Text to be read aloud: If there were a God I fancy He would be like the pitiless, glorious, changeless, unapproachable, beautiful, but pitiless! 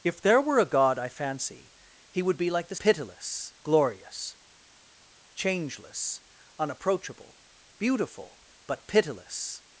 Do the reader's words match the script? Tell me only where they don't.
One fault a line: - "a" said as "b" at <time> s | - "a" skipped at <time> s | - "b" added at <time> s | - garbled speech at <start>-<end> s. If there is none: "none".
none